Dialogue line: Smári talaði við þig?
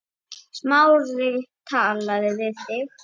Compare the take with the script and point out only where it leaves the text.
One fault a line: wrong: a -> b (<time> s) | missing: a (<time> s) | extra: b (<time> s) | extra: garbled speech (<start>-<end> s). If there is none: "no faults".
no faults